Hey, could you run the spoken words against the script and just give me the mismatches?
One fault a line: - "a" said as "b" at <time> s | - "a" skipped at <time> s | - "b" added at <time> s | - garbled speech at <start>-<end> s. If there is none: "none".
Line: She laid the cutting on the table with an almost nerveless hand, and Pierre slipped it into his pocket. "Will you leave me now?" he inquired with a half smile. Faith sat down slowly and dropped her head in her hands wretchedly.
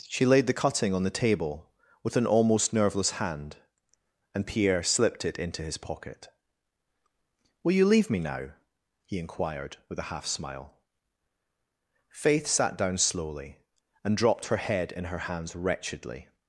none